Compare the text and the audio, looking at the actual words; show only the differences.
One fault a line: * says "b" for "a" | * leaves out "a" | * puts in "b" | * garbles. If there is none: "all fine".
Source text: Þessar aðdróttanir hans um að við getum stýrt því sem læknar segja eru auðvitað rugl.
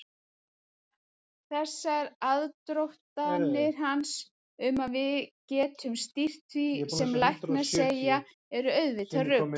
all fine